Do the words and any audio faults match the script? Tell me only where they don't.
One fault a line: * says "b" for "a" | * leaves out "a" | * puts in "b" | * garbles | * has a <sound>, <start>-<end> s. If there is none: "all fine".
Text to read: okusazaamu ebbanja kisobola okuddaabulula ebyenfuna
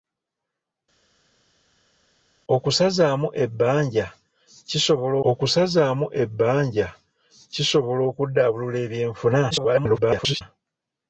* puts in "okusazaamu ebbanja kisobola"
* garbles